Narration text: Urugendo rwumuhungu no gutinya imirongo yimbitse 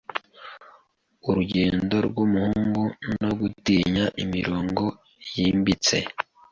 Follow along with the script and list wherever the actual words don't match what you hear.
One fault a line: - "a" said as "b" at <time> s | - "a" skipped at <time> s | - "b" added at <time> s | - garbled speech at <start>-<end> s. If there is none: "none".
none